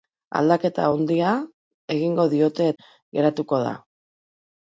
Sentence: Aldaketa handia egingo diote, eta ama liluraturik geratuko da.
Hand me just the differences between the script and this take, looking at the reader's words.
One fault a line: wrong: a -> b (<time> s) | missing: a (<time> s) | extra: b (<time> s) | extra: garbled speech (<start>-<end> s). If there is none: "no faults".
missing: eta ama liluraturik (2.7 s)